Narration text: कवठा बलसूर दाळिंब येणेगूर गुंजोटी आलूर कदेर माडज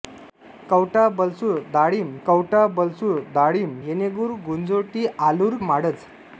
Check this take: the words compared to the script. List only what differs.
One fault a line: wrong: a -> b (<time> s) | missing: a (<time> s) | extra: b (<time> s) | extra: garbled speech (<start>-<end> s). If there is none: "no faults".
extra: कवठा बलसूर दाळिंब (2.3 s)
missing: कदेर (5.6 s)